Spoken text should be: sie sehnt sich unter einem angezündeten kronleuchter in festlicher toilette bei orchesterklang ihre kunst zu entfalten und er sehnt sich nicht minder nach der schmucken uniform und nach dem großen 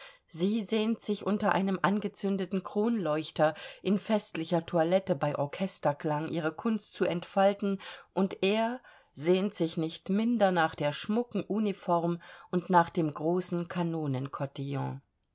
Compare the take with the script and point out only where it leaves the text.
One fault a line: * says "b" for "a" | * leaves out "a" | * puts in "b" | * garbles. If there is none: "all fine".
all fine